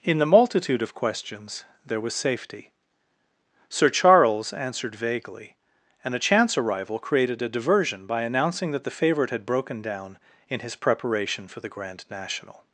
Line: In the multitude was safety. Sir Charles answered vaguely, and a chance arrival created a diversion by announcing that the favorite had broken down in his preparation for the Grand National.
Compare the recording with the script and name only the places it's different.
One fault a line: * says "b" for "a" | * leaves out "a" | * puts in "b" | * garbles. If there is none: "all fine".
* puts in "of questions there"